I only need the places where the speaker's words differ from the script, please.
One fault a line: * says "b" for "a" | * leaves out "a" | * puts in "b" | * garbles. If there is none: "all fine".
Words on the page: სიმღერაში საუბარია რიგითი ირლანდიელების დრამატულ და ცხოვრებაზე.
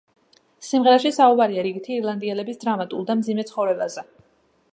* puts in "მძიმე"